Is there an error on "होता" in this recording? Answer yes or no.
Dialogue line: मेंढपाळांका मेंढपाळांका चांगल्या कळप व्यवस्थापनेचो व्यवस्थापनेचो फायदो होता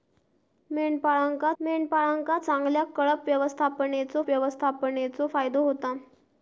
no